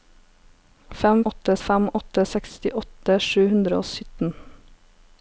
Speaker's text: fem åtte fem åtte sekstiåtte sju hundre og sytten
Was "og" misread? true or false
false